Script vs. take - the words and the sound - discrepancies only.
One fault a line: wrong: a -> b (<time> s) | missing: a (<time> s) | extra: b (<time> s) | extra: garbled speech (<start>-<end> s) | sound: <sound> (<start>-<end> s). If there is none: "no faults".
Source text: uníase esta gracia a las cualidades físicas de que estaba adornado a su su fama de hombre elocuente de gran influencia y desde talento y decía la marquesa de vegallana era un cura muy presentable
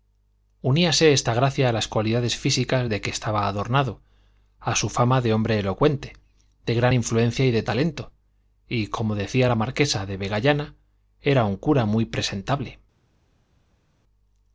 missing: su (4.9 s)
wrong: desde -> de (7.5 s)
extra: como (8.9 s)